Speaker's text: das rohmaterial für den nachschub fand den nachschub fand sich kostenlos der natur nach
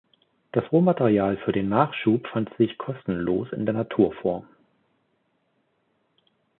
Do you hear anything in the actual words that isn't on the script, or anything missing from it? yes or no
yes